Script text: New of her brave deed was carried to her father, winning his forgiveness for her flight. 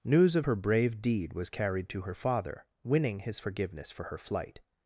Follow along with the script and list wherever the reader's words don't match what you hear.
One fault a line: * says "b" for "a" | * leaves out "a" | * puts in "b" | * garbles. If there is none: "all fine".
* says "News" for "New"